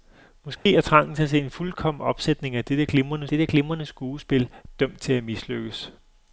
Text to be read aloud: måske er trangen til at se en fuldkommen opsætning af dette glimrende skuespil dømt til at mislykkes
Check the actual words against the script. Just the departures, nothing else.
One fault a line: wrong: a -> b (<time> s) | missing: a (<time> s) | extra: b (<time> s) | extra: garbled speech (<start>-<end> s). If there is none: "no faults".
extra: dette glimrende (3.3 s)